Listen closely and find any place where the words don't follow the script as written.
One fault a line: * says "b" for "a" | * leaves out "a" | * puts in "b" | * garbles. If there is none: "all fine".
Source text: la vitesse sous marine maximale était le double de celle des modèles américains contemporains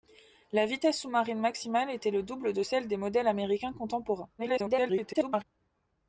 * garbles